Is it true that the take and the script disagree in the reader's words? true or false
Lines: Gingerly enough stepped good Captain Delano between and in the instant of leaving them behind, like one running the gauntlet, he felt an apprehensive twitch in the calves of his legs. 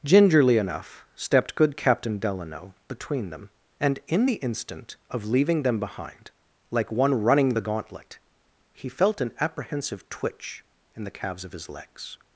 true